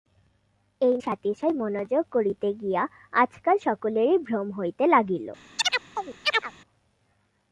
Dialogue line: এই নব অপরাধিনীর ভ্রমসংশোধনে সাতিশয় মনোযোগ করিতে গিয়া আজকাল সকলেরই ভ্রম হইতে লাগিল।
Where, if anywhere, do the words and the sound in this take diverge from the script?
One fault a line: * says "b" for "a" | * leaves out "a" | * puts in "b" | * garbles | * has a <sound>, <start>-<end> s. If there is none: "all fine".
* leaves out "নব অপরাধিনীর ভ্রমসংশোধনে"
* has a chirp, 5.6-6.5 s